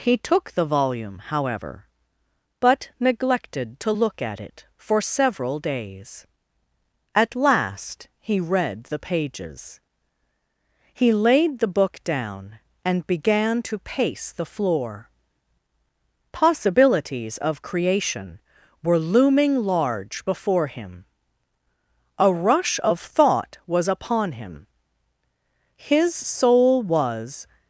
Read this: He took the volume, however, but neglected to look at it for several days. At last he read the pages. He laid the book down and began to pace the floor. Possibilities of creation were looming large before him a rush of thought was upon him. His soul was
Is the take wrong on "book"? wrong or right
right